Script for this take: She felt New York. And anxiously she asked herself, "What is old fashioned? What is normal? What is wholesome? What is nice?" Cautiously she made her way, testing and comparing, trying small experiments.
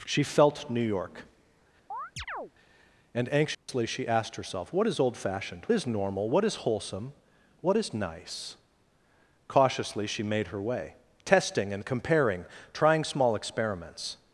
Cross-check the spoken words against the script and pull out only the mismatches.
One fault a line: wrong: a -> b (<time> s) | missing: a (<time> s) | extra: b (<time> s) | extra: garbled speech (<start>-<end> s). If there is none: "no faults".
missing: What (5.7 s)